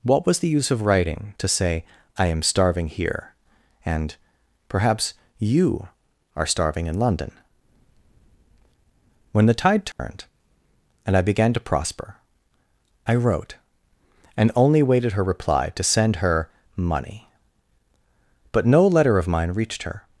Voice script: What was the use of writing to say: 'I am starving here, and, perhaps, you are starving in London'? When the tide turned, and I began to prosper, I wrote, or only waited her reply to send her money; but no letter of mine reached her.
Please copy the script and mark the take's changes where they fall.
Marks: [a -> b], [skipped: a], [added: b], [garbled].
What was the use of writing to say: 'I am starving here, and, perhaps, you are starving in London'? When the tide turned, and I began to prosper, I wrote, [or -> and] only waited her reply to send her money; but no letter of mine reached her.